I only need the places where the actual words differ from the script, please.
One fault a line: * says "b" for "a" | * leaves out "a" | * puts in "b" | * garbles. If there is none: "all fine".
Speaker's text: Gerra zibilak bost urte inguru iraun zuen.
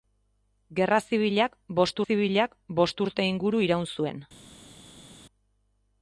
* puts in "zibilak bost"